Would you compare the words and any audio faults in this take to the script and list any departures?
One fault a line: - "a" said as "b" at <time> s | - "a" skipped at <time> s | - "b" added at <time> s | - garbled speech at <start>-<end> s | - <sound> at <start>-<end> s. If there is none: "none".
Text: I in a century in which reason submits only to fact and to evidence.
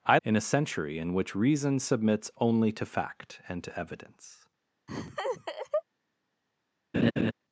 - laugh at 4.9-5.8 s
- laugh at 6.9-7.3 s